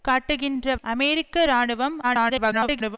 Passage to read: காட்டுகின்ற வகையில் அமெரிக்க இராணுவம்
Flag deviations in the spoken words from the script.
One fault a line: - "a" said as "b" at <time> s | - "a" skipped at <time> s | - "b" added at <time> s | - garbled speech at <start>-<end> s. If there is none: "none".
- "வகையில்" skipped at 0.8 s
- garbled speech at 2.0-3.0 s